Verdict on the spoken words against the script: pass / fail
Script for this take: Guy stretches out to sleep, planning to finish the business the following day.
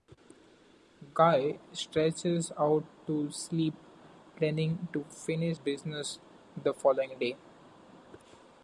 fail